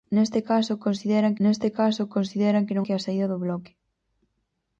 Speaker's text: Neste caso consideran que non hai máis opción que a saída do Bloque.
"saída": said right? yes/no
yes